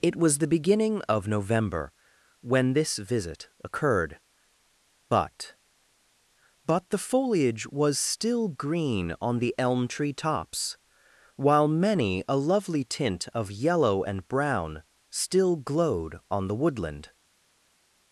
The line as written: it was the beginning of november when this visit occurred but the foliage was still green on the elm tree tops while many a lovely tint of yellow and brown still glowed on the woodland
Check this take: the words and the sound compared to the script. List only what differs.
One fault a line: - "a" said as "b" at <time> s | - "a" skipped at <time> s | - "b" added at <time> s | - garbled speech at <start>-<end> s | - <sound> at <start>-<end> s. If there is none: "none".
- "but" added at 6.7 s